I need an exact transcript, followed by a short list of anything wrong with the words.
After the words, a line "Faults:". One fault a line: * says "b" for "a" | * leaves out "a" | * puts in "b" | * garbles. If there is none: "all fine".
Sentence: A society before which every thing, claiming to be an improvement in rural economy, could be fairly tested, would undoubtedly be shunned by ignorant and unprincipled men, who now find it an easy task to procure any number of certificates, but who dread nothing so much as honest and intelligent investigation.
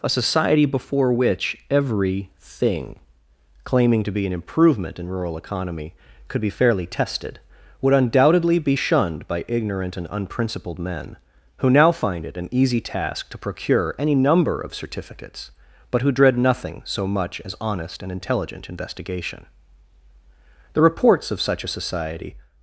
A society before which every thing, claiming to be an improvement in rural economy, could be fairly tested, would undoubtedly be shunned by ignorant and unprincipled men, who now find it an easy task to procure any number of certificates, but who dread nothing so much as honest and intelligent investigation. The reports of such a society
Faults:
* puts in "The reports of such a society"